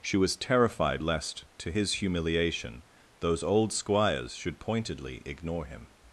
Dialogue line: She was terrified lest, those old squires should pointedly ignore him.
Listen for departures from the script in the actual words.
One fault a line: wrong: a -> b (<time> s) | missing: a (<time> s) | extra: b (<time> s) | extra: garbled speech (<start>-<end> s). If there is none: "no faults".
extra: to his humiliation (1.6 s)